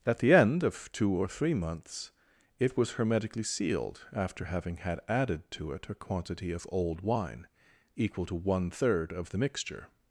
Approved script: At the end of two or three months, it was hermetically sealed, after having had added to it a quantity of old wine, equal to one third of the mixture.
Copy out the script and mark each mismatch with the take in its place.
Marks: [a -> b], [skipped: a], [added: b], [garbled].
At the end of two or three months, it was hermetically sealed, after having had added to it a quantity of old wine, equal to one third of the mixture.